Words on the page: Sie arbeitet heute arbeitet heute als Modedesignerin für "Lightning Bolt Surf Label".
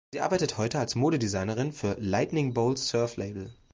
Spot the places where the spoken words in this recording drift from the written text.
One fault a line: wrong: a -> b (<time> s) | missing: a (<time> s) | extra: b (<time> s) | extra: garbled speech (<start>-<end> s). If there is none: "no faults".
missing: arbeitet heute (0.8 s)